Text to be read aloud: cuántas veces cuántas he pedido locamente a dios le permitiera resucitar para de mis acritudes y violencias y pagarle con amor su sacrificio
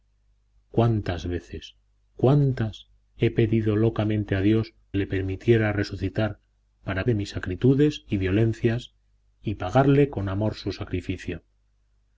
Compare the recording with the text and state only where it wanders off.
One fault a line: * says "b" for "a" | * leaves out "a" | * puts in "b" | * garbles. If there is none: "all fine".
all fine